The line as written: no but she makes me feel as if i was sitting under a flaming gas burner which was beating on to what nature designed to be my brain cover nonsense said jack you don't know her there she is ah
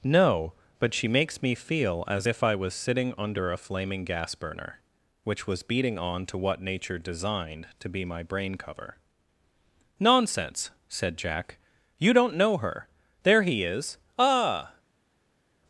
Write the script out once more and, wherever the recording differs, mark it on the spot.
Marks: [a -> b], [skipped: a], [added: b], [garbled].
no but she makes me feel as if i was sitting under a flaming gas burner which was beating on to what nature designed to be my brain cover nonsense said jack you don't know her there [she -> he] is ah